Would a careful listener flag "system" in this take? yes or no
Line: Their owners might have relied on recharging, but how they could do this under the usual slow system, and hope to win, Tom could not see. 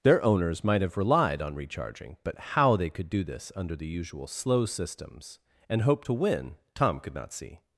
yes